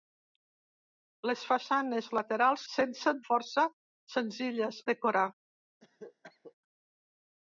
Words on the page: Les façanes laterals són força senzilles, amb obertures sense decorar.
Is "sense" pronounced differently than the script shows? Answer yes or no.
yes